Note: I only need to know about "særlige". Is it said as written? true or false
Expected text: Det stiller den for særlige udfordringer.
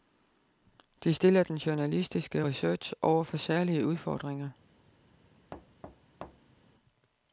true